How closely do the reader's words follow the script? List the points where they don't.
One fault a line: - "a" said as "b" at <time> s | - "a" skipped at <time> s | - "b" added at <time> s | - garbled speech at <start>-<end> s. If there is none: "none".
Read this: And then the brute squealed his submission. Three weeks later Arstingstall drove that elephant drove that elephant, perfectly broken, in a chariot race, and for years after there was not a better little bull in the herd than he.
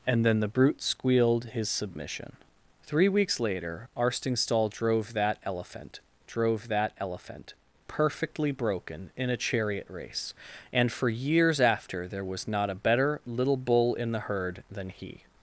none